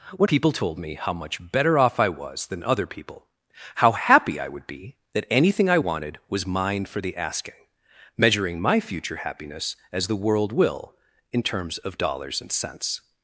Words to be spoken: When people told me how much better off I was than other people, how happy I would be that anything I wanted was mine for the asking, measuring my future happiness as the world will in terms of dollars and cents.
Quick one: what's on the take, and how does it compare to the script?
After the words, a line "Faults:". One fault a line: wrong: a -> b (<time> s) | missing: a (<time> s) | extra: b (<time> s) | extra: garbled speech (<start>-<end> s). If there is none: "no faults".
When people told me how much better off I was than other people, how happy I would be that anything I wanted was mine for the asking, measuring my future happiness as the world will in terms of dollars and cents.
Faults:
no faults